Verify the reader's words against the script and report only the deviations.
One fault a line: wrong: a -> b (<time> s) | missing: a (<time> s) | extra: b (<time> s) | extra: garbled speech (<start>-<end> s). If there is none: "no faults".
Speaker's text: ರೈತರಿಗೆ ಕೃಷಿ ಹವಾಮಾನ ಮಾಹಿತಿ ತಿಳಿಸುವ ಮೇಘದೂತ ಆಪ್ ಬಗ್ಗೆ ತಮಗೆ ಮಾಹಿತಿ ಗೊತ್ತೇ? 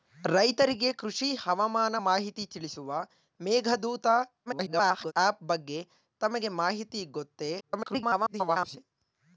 extra: garbled speech (4.5-5.1 s)
extra: garbled speech (7.6-8.8 s)